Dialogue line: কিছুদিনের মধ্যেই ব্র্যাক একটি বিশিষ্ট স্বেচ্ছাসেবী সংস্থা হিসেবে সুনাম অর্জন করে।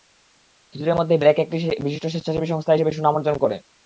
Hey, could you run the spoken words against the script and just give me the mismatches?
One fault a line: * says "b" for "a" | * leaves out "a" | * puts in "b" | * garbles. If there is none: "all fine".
all fine